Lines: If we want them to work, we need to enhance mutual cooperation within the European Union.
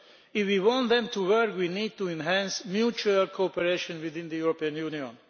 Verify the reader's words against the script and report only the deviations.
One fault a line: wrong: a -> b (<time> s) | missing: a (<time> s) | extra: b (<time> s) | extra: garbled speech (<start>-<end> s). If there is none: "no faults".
no faults